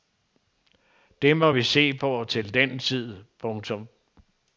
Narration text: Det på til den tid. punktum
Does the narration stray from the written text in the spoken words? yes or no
yes